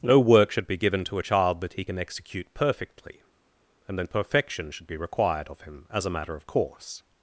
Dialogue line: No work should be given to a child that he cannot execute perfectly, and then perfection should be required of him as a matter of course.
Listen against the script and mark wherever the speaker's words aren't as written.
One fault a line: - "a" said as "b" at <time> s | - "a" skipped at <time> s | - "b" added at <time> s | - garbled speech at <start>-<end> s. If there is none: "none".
- "cannot" said as "can" at 1.8 s